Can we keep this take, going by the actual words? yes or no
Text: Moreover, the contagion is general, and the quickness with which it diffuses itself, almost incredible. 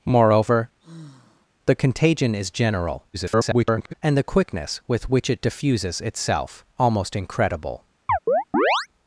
no